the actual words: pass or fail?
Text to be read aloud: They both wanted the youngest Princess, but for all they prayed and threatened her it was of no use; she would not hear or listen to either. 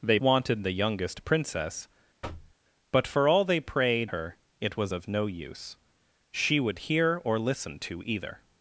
fail